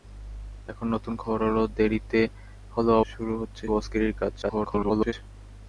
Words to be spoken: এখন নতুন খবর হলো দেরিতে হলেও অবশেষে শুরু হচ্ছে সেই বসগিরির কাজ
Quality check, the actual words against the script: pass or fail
fail